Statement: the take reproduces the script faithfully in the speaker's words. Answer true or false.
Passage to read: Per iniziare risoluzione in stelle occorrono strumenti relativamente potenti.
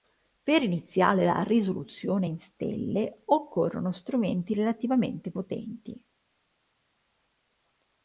false